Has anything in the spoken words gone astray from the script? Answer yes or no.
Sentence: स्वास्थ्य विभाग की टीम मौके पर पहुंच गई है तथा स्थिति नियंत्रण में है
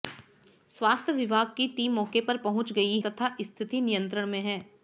yes